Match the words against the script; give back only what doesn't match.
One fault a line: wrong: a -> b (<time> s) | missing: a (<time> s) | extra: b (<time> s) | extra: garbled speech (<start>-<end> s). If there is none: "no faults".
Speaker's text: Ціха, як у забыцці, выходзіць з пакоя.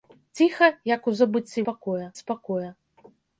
wrong: выходзіць -> пакоя (1.7 s)